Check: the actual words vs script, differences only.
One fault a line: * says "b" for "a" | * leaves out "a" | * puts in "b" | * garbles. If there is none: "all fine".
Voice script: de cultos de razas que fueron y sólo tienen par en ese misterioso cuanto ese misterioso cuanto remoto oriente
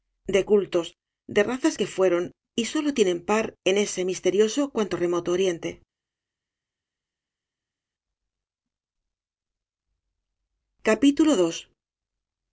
* leaves out "ese misterioso cuanto"